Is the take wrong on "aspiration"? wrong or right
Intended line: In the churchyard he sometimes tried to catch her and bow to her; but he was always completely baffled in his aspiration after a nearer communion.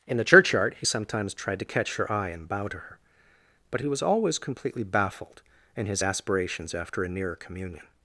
wrong